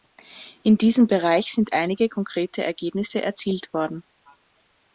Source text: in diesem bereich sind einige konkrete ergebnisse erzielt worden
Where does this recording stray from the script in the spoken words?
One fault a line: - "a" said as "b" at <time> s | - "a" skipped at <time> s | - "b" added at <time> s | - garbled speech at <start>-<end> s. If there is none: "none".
none